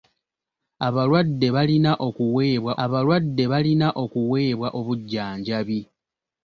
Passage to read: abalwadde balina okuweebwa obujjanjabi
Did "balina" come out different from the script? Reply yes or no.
no